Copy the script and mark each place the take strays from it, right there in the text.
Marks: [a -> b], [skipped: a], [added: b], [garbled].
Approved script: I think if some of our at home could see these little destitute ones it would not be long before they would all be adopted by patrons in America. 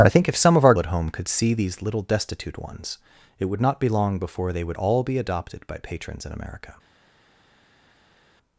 I think if some of our at home could see these little destitute ones it would not be long before they would all be adopted by patrons in America.